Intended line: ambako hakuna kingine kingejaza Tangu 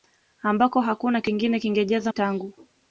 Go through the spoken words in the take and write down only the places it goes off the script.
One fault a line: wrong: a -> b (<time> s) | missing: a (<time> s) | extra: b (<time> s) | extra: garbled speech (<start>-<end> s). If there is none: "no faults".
no faults